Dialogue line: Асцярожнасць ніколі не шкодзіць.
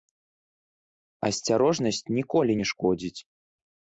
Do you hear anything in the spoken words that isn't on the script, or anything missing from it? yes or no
no